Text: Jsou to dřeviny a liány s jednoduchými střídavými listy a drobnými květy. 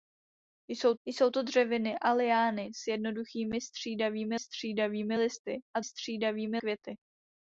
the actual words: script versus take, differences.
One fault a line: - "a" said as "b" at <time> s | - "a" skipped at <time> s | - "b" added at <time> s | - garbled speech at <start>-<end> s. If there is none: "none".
- "jsou" added at 1.0 s
- "střídavými" added at 4.4 s
- "drobnými" said as "střídavými" at 5.8 s